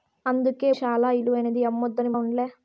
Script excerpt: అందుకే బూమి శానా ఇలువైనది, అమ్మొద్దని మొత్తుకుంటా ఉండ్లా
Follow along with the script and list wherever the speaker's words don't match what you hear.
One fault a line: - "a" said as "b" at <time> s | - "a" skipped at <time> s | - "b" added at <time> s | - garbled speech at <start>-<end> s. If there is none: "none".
- "బూమి" skipped at 0.7 s
- "మొత్తుకుంటా" skipped at 2.1 s